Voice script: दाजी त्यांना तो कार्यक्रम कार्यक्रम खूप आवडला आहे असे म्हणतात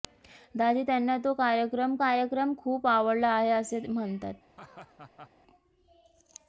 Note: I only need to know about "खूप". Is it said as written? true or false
true